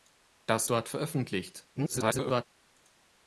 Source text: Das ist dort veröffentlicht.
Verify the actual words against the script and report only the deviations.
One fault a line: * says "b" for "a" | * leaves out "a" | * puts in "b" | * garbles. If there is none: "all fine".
* leaves out "ist"
* garbles